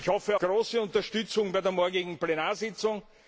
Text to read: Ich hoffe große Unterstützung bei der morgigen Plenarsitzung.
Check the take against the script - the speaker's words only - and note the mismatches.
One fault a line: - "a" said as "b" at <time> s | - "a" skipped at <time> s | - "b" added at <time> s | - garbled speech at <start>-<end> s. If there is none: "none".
none